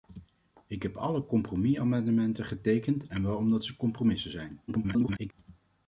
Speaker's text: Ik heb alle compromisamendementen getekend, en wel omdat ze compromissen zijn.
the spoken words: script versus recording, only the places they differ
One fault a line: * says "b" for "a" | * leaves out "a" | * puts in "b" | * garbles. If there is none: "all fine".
* garbles